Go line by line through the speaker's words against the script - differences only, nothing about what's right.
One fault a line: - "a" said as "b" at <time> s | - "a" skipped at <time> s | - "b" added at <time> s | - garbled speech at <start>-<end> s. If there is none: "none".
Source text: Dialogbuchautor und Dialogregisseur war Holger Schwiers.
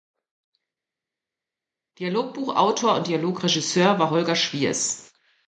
none